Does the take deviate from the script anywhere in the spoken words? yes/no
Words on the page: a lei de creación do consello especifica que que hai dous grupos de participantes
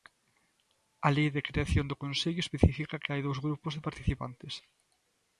yes